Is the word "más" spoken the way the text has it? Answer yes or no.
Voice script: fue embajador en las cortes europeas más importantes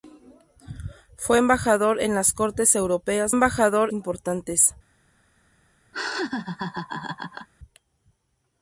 no